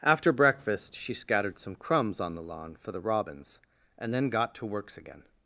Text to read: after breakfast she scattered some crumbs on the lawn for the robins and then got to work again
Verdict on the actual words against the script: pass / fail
fail